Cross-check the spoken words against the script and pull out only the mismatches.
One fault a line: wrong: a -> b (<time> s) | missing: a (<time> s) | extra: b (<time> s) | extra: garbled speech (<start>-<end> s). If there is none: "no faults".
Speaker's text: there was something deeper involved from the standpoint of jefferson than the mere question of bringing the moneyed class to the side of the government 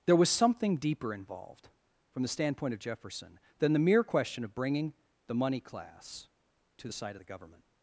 wrong: moneyed -> money (5.3 s)